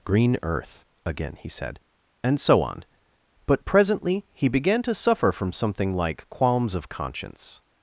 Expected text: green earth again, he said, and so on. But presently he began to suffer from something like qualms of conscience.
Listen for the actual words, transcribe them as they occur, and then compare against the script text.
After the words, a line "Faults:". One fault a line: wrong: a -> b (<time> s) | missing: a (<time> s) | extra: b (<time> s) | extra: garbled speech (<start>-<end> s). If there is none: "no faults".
green earth again, he said, and so on. But presently he began to suffer from something like qualms of conscience.
Faults:
no faults